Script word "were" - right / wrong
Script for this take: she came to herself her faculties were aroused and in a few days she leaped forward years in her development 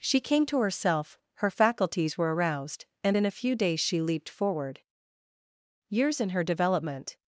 right